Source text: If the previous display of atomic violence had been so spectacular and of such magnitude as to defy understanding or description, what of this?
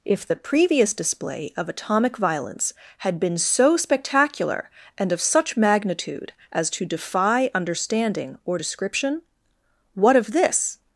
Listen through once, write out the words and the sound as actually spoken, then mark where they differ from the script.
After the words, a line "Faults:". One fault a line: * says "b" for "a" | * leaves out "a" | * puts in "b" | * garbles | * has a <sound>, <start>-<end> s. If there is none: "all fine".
If the previous display of atomic violence had been so spectacular and of such magnitude as to defy understanding or description, what of this?
Faults:
all fine